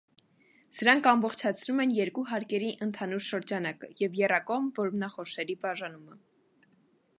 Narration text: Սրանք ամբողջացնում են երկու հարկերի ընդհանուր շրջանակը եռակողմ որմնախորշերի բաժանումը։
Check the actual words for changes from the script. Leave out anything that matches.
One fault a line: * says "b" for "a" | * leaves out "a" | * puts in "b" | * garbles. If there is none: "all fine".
* puts in "և"